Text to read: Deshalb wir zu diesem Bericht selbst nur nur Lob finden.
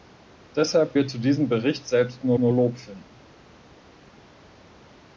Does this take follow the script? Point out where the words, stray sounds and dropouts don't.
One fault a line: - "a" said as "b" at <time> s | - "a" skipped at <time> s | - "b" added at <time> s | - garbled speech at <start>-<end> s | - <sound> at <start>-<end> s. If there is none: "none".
none